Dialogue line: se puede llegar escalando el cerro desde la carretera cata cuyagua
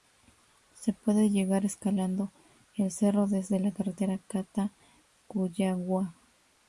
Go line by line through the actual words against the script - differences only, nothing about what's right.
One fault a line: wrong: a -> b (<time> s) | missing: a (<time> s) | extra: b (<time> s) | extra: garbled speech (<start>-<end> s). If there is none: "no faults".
no faults